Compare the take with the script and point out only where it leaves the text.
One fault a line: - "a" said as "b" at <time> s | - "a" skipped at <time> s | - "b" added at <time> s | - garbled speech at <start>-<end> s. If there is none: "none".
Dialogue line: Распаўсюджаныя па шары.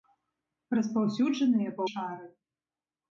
none